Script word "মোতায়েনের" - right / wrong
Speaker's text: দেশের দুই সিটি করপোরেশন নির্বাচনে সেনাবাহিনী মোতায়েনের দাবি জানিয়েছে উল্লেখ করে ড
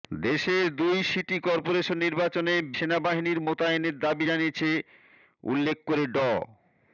right